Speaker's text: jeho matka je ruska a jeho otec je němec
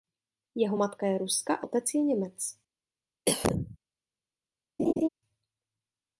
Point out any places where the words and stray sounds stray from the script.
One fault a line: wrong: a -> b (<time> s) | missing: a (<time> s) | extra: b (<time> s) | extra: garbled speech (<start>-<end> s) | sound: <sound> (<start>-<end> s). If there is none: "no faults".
missing: jeho (1.7 s)
sound: cough (3.3-3.8 s)
sound: laugh (4.8-5.1 s)